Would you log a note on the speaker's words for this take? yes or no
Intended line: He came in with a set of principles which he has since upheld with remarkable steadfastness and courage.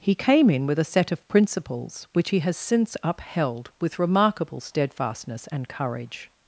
no